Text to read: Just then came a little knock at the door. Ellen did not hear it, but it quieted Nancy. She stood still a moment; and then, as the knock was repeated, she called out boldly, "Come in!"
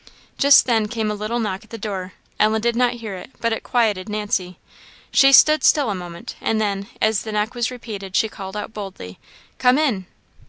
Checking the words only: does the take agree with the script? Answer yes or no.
yes